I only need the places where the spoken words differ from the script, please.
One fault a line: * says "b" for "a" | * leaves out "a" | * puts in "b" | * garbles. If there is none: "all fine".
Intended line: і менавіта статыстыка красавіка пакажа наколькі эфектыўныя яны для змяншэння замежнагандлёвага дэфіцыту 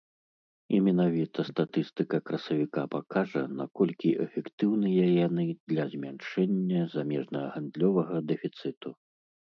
all fine